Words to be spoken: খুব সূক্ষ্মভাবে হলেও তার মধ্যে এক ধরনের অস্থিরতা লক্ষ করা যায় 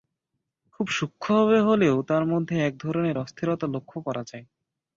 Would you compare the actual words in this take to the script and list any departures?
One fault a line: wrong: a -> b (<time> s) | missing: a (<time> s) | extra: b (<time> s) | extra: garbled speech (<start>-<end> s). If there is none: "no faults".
no faults